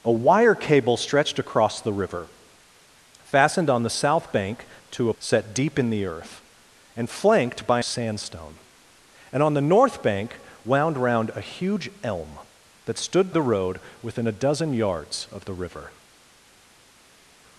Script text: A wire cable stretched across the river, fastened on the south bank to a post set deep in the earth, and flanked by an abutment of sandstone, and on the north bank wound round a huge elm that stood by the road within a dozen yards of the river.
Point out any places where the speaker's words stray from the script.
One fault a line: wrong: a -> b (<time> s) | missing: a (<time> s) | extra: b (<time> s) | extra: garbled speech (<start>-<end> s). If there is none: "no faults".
missing: post (5.1 s)
missing: an abutment of (7.8 s)
missing: by (13.3 s)